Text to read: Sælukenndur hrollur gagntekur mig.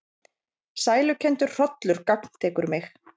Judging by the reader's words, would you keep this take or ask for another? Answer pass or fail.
pass